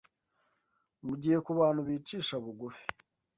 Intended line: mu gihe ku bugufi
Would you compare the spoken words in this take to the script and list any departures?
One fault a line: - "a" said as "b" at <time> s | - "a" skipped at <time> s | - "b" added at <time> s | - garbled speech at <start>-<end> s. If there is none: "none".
- "bantu bicisha" added at 1.6 s